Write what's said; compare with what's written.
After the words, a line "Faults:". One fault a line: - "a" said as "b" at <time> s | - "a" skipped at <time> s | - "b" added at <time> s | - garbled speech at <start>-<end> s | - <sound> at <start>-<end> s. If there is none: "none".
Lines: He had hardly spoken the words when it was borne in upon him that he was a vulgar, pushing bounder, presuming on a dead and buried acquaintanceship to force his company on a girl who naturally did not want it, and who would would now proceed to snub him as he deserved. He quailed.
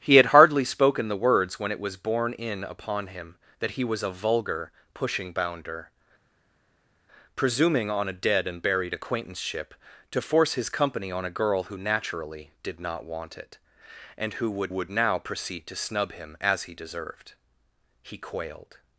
He had hardly spoken the words when it was borne in upon him that he was a vulgar, pushing bounder, presuming on a dead and buried acquaintanceship to force his company on a girl who naturally did not want it, and who would would now proceed to snub him as he deserved. He quailed.
Faults:
none